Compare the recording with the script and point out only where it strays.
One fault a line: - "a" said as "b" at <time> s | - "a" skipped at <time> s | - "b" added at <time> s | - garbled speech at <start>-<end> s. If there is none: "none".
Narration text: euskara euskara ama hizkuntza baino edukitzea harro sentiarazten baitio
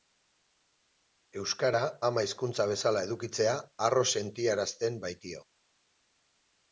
- "euskara" skipped at 1.8 s
- "baino" said as "bezala" at 2.7 s